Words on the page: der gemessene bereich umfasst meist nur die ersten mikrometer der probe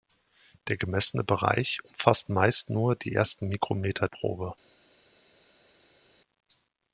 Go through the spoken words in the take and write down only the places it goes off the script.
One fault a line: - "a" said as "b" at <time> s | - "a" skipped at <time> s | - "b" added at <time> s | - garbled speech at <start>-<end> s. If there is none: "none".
- "der" skipped at 4.1 s